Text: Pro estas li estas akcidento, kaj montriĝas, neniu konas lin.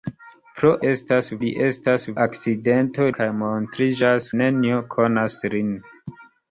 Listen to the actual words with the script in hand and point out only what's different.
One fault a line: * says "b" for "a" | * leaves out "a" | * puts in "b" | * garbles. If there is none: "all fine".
all fine